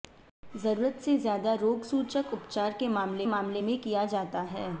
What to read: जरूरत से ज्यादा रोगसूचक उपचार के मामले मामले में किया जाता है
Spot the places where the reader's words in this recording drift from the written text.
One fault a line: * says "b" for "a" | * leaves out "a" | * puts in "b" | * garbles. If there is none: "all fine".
all fine